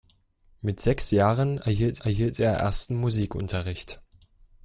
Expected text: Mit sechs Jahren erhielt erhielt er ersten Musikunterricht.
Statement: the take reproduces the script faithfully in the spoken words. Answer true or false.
true